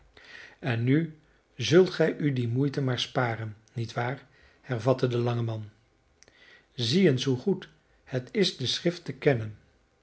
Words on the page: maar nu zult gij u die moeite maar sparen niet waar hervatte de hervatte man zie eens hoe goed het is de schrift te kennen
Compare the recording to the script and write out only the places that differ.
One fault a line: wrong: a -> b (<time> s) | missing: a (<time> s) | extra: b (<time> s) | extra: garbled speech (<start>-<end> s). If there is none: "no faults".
wrong: maar -> en (0.6 s)
wrong: hervatte -> lange (5.2 s)